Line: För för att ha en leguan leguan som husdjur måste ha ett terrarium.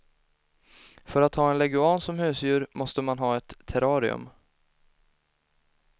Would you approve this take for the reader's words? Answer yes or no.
no